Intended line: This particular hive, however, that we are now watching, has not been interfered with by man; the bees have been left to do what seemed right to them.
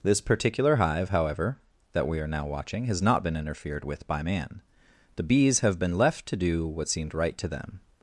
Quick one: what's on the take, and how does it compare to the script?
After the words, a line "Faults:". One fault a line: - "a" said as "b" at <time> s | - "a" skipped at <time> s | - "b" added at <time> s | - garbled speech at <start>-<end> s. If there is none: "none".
This particular hive, however, that we are now watching, has not been interfered with by man; the bees have been left to do what seemed right to them.
Faults:
none